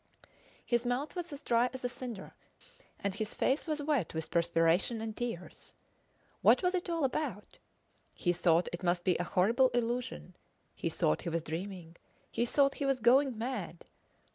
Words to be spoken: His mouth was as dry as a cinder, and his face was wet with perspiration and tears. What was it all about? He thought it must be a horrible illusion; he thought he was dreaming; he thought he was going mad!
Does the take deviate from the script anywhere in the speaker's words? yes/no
no